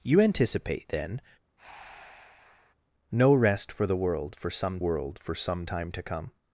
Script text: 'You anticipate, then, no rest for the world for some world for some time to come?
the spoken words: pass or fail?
pass